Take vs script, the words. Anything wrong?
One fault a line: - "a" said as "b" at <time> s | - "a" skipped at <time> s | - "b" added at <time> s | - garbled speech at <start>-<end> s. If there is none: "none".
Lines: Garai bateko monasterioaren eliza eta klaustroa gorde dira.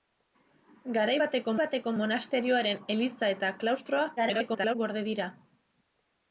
- "bateko" added at 1.6 s
- garbled speech at 4.2-4.8 s